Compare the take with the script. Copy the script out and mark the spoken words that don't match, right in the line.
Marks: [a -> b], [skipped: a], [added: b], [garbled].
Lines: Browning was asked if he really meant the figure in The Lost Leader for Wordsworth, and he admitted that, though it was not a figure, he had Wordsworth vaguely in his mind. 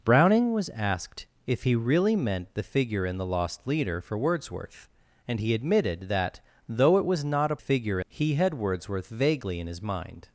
Browning was asked if he really meant the figure in The Lost Leader for Wordsworth, and he admitted that, though it was not a figure, he had Wordsworth vaguely in his mind.